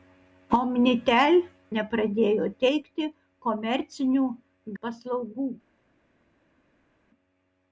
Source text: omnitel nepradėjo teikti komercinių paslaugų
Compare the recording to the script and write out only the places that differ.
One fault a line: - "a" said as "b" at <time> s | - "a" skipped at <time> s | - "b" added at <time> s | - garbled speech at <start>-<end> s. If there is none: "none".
none